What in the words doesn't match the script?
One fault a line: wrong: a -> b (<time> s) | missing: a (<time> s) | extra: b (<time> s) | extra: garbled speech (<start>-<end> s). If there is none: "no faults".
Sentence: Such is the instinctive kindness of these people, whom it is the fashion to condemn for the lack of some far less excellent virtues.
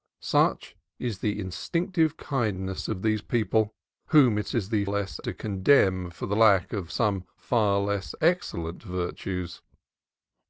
wrong: fashion -> less (4.9 s)